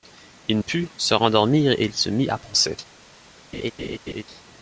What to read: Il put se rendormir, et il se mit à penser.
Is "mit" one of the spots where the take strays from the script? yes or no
no